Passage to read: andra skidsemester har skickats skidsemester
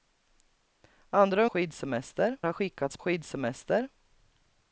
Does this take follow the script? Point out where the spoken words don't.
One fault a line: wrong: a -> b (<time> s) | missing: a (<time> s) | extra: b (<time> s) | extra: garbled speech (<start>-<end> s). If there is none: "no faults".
no faults